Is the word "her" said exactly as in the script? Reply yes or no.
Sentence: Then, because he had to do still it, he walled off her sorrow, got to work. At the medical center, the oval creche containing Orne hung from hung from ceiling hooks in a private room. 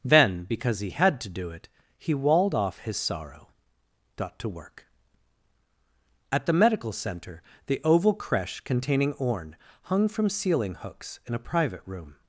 no